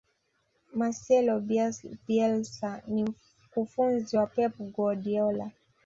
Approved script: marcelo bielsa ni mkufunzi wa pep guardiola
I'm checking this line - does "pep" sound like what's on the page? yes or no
yes